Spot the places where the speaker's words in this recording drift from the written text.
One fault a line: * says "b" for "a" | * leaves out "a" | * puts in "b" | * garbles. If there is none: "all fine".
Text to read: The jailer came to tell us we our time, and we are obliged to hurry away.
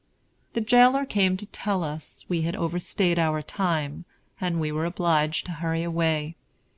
* puts in "had overstayed"
* says "were" for "are"